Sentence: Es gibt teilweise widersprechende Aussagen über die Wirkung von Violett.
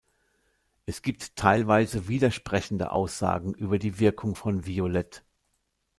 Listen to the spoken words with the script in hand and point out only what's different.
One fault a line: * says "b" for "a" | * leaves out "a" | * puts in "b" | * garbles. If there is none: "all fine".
all fine